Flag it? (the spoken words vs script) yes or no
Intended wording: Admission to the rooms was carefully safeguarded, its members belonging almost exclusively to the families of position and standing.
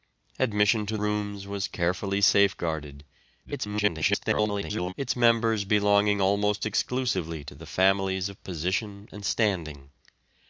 yes